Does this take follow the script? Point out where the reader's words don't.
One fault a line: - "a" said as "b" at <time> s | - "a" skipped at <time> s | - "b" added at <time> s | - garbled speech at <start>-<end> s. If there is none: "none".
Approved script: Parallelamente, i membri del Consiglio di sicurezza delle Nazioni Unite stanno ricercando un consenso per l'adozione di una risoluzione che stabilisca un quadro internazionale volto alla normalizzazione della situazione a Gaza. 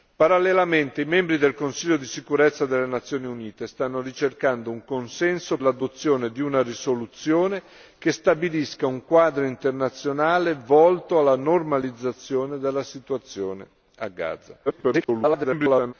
- "per" skipped at 5.6 s
- garbled speech at 14.7-15.9 s